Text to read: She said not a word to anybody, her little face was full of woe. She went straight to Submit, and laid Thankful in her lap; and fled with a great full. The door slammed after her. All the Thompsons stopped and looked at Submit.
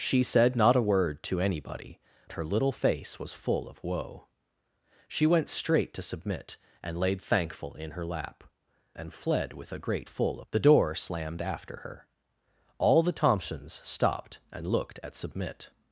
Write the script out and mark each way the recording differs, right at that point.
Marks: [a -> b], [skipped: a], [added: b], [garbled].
She said not a word to anybody, her little face was full of woe. She went straight to Submit, and laid Thankful in her lap; and fled with a great full. The door slammed after her. All the Thompsons stopped and looked at Submit.